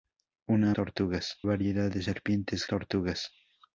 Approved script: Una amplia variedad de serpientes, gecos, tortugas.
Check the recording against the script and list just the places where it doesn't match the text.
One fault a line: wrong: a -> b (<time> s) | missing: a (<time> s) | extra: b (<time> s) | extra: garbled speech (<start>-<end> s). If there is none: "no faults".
wrong: amplia -> tortugas (0.7 s)
missing: gecos (2.6 s)